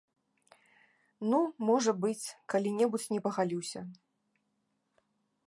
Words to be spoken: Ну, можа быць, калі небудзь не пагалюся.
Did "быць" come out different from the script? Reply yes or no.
no